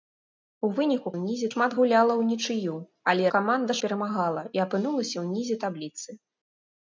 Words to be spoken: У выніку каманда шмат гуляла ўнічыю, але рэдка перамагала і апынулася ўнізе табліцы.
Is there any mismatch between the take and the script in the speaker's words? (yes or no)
yes